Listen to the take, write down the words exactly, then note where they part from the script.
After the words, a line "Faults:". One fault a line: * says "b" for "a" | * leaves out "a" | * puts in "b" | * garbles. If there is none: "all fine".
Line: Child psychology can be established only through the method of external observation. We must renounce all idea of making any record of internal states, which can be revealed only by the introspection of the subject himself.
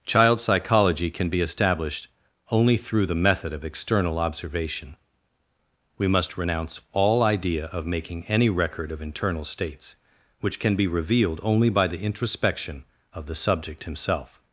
Child psychology can be established only through the method of external observation. We must renounce all idea of making any record of internal states, which can be revealed only by the introspection of the subject himself.
Faults:
all fine